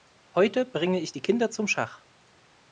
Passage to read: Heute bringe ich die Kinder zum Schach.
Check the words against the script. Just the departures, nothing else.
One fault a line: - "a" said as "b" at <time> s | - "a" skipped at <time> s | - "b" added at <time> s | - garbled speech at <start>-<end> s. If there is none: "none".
none